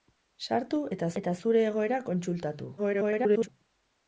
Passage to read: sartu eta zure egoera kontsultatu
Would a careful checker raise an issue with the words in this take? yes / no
yes